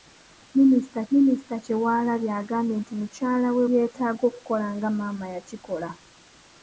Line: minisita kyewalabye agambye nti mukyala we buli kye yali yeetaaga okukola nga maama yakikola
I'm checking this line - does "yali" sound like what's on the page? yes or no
no